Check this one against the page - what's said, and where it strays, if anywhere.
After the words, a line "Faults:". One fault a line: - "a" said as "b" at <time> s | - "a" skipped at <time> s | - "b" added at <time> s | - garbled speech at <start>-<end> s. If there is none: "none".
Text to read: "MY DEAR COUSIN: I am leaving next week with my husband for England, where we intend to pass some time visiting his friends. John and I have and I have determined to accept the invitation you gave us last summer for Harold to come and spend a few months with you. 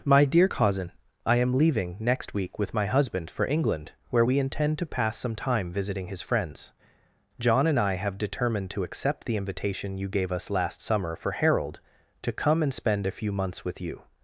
"MY DEAR COUSIN: I am leaving next week with my husband for England, where we intend to pass some time visiting his friends. John and I have determined to accept the invitation you gave us last summer for Harold to come and spend a few months with you.
Faults:
- "and I have" skipped at 8.2 s